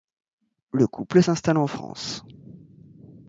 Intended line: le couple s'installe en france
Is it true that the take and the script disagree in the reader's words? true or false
false